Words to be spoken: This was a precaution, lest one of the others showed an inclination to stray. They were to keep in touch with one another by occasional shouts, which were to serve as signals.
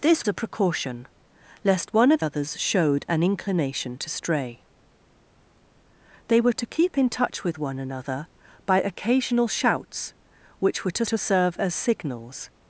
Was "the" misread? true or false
true